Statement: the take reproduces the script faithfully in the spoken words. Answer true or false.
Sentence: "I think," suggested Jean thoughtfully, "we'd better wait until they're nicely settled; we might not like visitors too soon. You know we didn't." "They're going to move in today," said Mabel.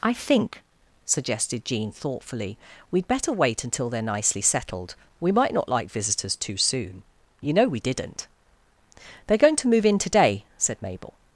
true